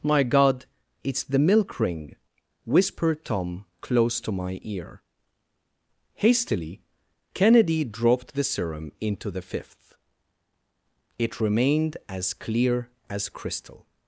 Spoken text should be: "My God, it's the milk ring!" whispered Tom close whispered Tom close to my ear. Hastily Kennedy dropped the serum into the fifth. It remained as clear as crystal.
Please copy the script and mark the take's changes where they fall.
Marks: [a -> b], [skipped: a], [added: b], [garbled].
"My God, it's the milk ring!" whispered Tom close [skipped: whispered Tom close] to my ear. Hastily Kennedy dropped the serum into the fifth. It remained as clear as crystal.